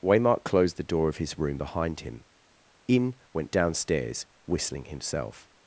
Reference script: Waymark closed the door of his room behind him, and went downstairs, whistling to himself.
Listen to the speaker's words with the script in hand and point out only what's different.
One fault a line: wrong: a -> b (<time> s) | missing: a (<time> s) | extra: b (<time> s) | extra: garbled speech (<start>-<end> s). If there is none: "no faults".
wrong: and -> in (2.9 s)
missing: to (4.9 s)